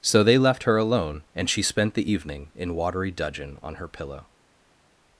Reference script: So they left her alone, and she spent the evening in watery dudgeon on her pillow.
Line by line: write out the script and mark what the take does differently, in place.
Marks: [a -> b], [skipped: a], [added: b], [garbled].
So they left her alone, and she spent the evening in watery dudgeon on her pillow.